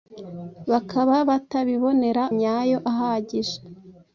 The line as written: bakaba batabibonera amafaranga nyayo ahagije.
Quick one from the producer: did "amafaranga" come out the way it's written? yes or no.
no